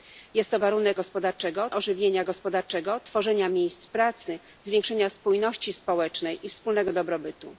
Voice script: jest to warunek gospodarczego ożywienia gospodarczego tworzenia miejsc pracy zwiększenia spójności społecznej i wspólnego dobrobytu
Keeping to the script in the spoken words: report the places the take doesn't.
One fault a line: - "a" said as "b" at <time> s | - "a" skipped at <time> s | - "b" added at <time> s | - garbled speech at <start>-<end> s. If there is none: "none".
none